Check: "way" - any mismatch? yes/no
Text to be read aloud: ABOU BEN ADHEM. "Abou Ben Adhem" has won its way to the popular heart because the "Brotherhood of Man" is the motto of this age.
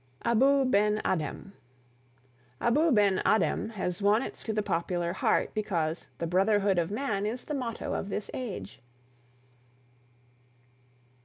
yes